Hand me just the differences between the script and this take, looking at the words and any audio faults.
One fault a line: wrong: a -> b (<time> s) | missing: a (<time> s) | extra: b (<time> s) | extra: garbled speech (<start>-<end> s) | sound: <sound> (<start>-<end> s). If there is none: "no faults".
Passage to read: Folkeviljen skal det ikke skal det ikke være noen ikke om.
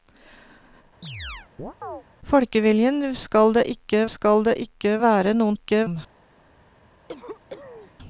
sound: chirp (1.0-2.0 s)
sound: cough (7.1-7.9 s)